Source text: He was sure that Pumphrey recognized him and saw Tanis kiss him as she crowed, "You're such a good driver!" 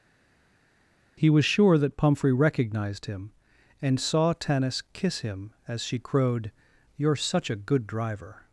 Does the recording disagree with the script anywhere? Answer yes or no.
no